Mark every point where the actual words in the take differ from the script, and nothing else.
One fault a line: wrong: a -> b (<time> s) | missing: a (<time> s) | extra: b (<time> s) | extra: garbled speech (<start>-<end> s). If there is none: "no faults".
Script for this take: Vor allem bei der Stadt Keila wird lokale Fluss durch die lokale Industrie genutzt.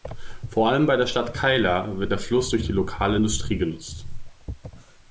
wrong: lokale -> der (2.1 s)